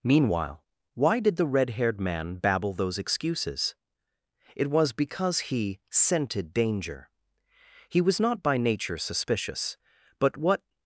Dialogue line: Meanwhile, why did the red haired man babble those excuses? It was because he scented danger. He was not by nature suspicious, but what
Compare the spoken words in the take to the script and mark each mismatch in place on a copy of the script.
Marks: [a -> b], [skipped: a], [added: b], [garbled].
Meanwhile, why did the red haired man babble those excuses? It was because he scented danger. He was not by nature suspicious, but what